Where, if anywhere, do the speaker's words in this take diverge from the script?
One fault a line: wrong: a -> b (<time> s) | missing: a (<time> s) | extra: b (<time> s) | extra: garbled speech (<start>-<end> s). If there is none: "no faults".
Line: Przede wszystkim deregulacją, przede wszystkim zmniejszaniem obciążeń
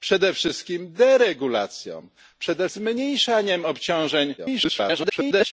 missing: wszystkim (2.7 s)
extra: garbled speech (4.4-5.5 s)